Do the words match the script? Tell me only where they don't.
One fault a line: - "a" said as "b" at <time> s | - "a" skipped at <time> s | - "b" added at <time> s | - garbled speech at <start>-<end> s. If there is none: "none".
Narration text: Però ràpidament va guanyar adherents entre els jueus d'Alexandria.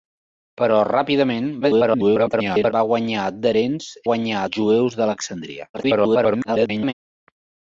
- garbled speech at 1.6-2.7 s
- "entre" said as "guanyar" at 4.1 s
- garbled speech at 5.7-6.9 s